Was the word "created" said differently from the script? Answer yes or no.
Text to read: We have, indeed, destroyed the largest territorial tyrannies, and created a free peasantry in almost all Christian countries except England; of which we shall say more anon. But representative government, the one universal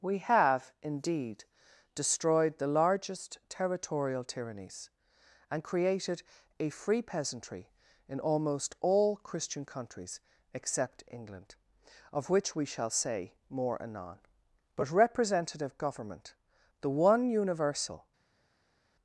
no